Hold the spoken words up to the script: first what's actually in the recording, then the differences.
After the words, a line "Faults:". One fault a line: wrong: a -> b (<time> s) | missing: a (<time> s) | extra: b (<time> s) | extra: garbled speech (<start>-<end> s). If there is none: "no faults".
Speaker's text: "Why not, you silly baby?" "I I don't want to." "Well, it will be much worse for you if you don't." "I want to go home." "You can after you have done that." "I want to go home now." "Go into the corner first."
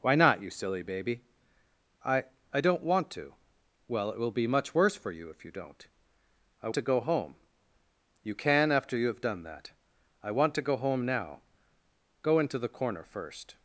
"Why not, you silly baby?" "I I don't want to." "Well, it will be much worse for you if you don't." "I to go home." "You can after you have done that." "I want to go home now." "Go into the corner first."
Faults:
missing: want (6.7 s)